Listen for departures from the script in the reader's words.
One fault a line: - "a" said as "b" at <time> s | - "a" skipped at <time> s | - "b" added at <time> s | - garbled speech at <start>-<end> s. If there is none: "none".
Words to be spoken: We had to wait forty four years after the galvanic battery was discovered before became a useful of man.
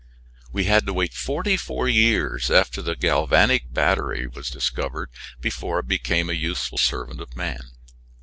- "it" added at 5.8 s
- "servant" added at 6.8 s